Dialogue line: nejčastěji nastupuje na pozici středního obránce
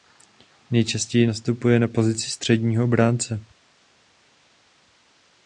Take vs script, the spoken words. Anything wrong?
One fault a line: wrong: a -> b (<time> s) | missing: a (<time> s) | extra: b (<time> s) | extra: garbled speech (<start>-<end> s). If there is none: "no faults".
no faults